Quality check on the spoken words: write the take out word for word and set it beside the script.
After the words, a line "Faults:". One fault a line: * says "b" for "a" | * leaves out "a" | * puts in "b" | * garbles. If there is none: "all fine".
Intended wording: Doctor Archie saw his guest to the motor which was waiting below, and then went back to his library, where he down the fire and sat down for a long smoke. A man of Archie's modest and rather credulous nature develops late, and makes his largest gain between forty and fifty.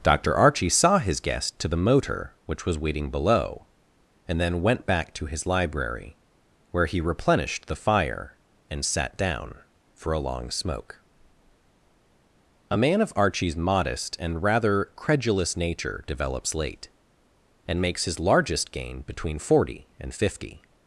Doctor Archie saw his guest to the motor which was waiting below, and then went back to his library, where he replenished the fire and sat down for a long smoke. A man of Archie's modest and rather credulous nature develops late, and makes his largest gain between forty and fifty.
Faults:
* says "replenished" for "down"